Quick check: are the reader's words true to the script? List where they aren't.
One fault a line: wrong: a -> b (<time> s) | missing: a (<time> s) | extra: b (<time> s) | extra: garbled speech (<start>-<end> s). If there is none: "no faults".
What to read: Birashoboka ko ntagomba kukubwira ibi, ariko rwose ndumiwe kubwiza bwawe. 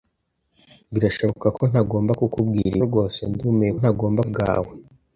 missing: ibi ariko (2.8 s)
wrong: kubwiza -> ntagomba (3.8 s)